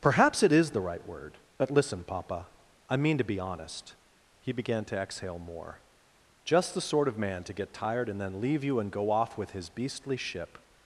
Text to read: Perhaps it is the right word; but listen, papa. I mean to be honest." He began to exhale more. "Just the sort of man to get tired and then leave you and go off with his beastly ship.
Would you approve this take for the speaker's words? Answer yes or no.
yes